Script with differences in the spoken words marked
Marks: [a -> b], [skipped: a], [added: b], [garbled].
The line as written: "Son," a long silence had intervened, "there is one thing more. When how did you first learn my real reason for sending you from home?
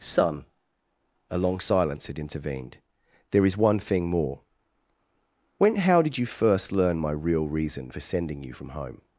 "Son," a long silence had intervened, "there is one thing more. When how did you first learn my real reason for sending you from home?